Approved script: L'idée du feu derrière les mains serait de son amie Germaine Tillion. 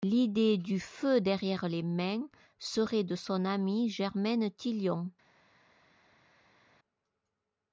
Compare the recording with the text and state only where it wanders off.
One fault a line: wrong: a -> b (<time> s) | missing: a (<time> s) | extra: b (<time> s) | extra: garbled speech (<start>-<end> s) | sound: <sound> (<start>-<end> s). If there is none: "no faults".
no faults